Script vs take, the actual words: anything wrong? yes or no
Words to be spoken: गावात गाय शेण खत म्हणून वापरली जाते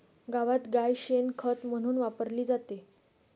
no